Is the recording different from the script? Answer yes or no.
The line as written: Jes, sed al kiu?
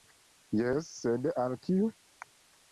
no